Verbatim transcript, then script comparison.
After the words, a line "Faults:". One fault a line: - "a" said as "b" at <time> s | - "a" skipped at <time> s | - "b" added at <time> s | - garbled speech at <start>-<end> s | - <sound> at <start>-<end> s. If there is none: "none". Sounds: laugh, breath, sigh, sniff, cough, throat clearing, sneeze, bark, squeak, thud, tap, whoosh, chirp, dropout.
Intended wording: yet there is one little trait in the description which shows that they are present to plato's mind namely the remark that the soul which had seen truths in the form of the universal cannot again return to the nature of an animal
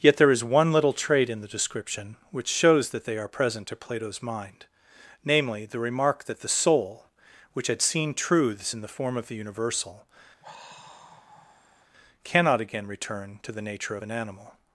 yet there is one little trait in the description which shows that they are present to plato's mind namely the remark that the soul which had seen truths in the form of the universal cannot again return to the nature of an animal
Faults:
- sigh at 10.4-11.9 s